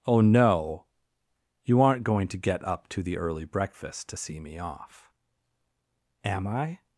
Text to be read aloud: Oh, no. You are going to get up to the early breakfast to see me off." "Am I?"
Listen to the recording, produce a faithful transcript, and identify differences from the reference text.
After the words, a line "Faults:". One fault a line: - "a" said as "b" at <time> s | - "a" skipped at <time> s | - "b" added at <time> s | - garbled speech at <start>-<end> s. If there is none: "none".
Oh, no. You aren't going to get up to the early breakfast to see me off." "Am I?"
Faults:
- "are" said as "aren't" at 1.8 s